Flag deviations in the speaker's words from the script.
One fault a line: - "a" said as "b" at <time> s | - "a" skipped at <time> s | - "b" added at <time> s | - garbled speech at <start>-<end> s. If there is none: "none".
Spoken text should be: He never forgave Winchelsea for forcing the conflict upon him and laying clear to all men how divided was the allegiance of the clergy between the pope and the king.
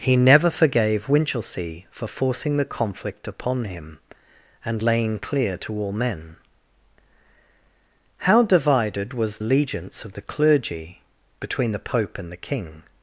- "the" skipped at 9.4 s